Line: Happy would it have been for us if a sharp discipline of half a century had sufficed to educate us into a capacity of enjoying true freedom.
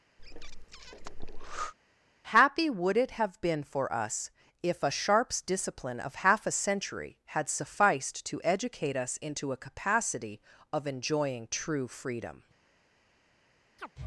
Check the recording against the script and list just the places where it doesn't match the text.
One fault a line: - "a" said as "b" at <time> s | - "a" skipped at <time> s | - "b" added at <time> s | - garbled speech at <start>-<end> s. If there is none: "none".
- "sharp" said as "sharps" at 4.9 s